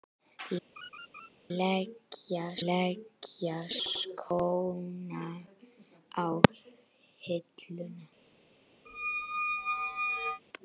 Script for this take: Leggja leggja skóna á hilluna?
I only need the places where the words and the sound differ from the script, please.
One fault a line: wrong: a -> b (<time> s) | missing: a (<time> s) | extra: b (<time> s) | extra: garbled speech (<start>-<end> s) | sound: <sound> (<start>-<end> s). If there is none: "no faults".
sound: laugh (0.8-1.3 s)
sound: squeak (8.9-10.4 s)